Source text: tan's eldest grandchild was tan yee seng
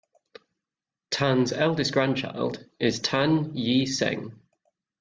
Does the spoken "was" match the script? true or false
false